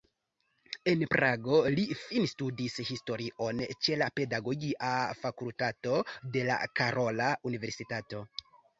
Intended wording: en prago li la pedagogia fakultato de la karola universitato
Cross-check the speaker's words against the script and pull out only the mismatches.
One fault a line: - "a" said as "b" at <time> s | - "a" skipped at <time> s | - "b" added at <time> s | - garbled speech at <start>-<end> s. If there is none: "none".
- "finstudis historion ĉe" added at 2.0 s